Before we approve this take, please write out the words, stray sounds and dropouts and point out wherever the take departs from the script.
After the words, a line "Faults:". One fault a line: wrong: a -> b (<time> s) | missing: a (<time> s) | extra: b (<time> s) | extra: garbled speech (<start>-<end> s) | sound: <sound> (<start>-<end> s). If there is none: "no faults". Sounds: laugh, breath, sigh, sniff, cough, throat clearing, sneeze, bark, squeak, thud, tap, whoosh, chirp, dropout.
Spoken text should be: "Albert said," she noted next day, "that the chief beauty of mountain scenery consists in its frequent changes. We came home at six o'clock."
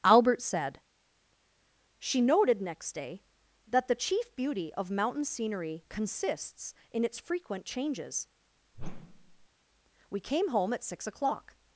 "Albert said," she noted next day, "that the chief beauty of mountain scenery consists in its frequent changes. We came home at six o'clock."
Faults:
sound: whoosh (8.7-9.5 s)